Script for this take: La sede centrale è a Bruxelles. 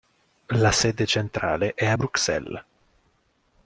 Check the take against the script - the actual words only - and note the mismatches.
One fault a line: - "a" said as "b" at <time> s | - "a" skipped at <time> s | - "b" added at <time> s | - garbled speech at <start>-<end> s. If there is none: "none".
none